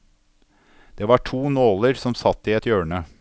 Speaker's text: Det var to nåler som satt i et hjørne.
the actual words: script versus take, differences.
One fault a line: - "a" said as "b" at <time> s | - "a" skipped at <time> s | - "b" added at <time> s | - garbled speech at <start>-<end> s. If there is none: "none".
none